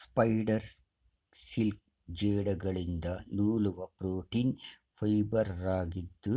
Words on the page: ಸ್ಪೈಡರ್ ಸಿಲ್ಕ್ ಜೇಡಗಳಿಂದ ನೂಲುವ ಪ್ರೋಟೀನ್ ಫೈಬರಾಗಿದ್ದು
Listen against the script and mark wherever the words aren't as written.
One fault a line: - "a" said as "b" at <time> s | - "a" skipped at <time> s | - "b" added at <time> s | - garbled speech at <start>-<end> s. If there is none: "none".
none